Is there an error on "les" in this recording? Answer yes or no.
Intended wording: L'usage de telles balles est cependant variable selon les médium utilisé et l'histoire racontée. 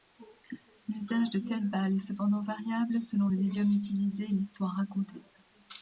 yes